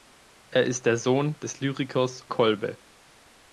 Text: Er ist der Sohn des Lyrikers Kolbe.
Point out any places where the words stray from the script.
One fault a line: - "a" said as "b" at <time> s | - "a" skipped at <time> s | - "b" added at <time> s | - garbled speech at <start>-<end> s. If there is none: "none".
none